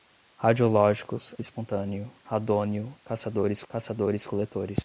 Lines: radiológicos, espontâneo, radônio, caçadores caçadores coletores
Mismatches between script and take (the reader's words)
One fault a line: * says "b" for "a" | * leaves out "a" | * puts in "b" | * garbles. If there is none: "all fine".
all fine